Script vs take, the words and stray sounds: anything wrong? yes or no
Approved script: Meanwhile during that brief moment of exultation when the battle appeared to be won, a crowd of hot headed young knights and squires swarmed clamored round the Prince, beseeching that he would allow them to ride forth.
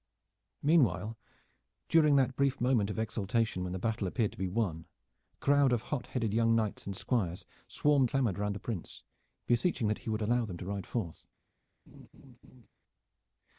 yes